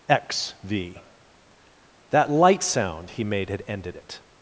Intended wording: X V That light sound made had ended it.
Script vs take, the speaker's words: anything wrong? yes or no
yes